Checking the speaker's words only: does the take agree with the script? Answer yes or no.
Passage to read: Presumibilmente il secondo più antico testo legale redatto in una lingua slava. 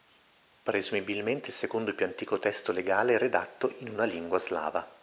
yes